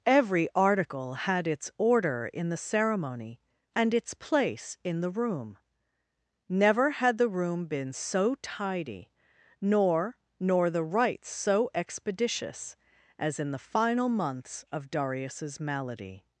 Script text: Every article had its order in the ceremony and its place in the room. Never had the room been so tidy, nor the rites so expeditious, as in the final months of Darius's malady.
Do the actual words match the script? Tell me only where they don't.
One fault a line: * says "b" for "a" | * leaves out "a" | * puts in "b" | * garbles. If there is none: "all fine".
* puts in "nor"